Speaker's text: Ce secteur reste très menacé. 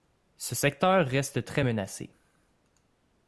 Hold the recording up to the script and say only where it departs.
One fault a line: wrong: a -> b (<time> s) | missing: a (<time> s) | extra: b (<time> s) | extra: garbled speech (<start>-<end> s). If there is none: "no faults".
no faults